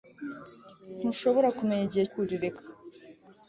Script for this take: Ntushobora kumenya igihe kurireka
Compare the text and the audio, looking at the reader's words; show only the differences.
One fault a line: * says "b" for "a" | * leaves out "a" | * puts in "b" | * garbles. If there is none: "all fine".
all fine